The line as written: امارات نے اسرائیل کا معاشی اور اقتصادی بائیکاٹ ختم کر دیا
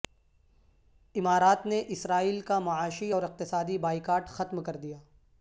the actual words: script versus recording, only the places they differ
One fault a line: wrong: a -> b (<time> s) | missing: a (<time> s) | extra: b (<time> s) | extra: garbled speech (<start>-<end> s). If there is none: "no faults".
no faults